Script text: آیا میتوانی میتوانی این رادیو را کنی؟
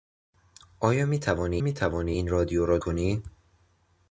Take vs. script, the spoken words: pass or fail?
pass